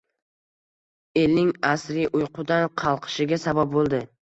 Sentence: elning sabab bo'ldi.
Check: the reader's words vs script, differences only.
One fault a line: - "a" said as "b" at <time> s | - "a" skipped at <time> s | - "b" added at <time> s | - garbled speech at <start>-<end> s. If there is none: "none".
- "asriy uyqudan qalqishiga" added at 1.8 s